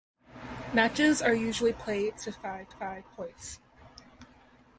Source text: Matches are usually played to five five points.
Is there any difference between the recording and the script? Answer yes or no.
no